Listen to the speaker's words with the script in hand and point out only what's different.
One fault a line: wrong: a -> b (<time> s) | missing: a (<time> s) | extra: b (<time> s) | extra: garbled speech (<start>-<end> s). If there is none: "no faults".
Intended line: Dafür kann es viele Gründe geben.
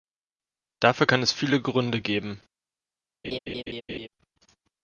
no faults